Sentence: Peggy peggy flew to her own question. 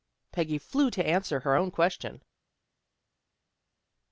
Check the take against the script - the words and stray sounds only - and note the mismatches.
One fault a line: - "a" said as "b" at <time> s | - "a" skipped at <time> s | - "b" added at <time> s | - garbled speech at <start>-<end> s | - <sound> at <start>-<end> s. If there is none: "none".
- "peggy" skipped at 0.6 s
- "answer" added at 1.1 s